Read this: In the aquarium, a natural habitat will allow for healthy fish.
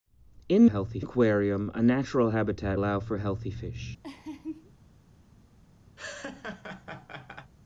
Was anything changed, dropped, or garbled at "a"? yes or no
no